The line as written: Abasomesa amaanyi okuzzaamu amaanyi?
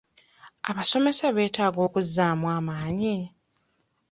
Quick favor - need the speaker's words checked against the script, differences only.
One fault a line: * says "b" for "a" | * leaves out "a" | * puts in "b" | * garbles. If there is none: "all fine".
* says "beetaaga" for "amaanyi"